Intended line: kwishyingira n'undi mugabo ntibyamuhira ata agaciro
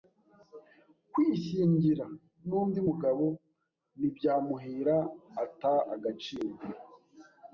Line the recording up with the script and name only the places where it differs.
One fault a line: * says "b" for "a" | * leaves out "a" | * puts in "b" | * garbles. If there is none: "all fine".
all fine